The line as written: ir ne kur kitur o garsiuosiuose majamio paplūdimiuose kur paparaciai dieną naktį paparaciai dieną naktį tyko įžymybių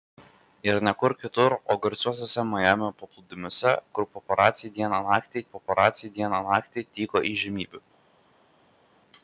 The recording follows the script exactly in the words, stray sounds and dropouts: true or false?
true